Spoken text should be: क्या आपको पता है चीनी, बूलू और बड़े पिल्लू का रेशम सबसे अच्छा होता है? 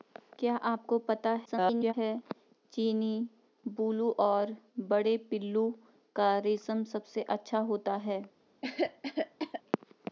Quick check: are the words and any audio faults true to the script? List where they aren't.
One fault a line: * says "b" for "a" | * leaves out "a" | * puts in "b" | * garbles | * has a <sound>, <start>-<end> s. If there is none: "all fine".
* garbles
* has a cough, 8.6-9.6 s